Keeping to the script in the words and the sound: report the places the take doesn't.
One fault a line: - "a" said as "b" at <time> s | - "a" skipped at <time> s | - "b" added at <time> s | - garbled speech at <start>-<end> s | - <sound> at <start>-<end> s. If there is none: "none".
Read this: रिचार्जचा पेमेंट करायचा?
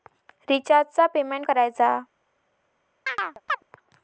- chirp at 3.1-3.6 s